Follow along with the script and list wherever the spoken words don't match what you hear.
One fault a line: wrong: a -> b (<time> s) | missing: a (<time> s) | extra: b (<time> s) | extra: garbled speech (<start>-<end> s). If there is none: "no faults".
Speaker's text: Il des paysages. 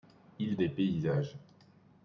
no faults